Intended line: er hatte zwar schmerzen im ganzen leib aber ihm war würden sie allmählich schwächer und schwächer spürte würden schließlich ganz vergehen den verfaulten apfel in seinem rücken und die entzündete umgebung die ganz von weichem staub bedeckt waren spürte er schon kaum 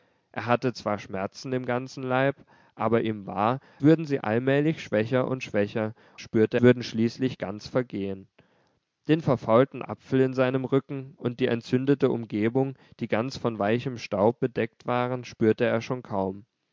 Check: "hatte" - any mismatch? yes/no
no